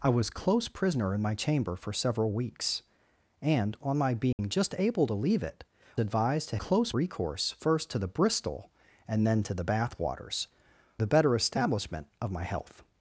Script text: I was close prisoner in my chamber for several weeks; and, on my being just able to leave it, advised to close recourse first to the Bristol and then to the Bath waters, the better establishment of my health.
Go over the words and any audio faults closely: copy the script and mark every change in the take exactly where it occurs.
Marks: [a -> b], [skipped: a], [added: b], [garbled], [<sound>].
I was close prisoner in my chamber for several weeks; and, on my being [dropout] just able to leave it, advised to close recourse first to the Bristol and then to the Bath waters, the better establishment of my health.